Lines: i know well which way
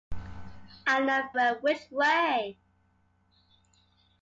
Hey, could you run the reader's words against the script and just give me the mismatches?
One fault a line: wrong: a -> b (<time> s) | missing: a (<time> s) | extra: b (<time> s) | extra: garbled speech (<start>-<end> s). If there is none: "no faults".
no faults